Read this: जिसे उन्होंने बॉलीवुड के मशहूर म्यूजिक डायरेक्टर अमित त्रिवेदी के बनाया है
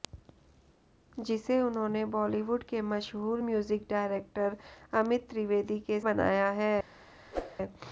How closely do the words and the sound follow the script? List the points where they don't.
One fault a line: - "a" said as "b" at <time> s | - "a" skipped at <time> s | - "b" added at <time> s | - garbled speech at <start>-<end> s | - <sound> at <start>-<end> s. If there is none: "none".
- whoosh at 7.3-7.6 s